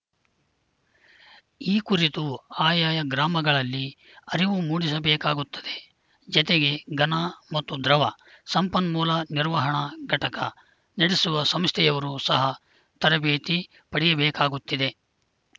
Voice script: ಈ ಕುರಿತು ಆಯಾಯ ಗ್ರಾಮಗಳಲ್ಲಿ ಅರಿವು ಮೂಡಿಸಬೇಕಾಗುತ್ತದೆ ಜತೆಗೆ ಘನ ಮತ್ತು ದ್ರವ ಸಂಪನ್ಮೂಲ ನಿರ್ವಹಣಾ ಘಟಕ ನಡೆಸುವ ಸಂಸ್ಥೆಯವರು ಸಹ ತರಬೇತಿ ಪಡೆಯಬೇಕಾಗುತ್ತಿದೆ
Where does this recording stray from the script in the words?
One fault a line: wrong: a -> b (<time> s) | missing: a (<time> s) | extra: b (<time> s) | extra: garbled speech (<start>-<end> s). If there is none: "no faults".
no faults